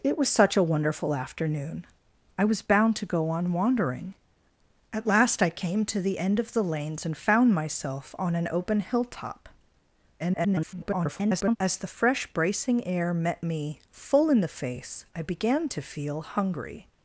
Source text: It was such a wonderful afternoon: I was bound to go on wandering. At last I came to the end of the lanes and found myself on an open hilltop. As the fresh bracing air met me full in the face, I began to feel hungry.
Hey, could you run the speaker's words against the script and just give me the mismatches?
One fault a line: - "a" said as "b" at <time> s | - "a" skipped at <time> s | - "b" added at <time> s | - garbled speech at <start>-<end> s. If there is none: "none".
- garbled speech at 10.2-11.6 s